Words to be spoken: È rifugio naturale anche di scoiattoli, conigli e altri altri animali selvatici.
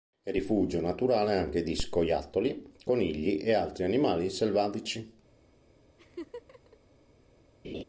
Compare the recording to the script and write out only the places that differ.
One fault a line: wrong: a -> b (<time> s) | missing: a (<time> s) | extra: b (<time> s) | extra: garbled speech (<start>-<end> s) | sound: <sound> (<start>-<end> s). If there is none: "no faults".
missing: altri (3.8 s)
sound: laugh (6.0-6.8 s)
sound: laugh (7.6-7.8 s)